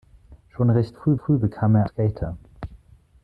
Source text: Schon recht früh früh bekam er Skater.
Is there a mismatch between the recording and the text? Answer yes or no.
no